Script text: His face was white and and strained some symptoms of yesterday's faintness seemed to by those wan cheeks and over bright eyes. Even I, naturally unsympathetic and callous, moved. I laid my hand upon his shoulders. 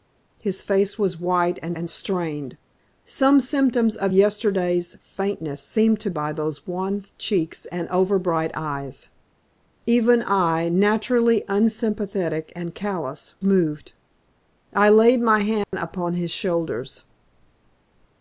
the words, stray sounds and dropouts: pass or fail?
fail